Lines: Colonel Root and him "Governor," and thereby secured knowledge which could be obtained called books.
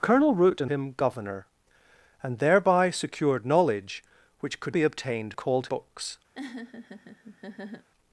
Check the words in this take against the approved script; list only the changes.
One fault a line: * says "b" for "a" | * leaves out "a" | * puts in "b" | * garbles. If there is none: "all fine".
all fine